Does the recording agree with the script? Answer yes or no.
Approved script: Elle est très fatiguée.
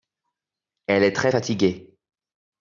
yes